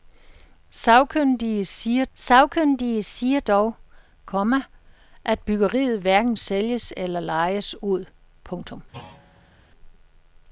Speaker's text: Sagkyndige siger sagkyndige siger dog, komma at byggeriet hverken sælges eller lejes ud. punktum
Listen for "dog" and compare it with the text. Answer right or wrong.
right